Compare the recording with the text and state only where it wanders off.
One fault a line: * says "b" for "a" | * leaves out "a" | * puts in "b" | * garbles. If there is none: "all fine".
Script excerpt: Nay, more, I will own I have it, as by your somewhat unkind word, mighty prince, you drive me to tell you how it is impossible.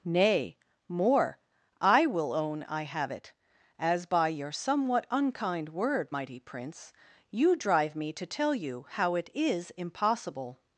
all fine